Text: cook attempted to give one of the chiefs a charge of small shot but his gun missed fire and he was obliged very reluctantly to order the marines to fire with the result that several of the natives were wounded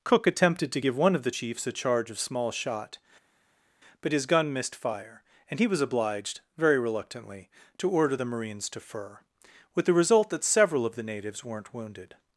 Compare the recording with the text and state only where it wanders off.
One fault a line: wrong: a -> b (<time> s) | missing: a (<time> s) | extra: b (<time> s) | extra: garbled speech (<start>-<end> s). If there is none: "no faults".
wrong: fire -> fur (8.8 s)
wrong: were -> weren't (11.4 s)